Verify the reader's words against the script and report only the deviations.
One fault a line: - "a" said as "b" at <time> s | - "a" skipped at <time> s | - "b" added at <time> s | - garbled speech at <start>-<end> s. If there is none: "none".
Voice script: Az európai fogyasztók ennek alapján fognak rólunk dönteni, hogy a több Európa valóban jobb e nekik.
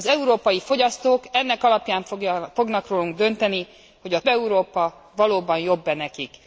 - "több" skipped at 4.2 s